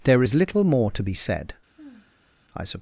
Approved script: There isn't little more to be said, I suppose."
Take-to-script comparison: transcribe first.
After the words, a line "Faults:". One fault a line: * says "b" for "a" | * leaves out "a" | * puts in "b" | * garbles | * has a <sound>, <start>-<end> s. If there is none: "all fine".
There is little more to be said, I suppose."
Faults:
* says "is" for "isn't"
* has a sigh, 1.8-2.5 s